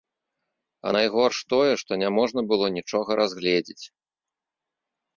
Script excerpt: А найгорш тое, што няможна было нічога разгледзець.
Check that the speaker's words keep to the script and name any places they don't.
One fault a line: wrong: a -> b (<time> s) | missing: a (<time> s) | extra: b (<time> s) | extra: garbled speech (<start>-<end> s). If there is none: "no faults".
no faults